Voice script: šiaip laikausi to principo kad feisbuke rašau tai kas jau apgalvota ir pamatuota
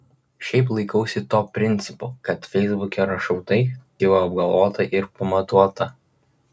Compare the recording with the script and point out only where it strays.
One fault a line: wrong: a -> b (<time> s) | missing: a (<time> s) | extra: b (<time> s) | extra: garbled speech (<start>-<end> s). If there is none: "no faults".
missing: kas (3.6 s)